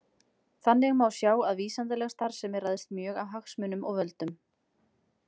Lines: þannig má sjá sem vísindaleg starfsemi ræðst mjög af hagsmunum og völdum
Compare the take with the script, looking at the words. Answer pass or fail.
fail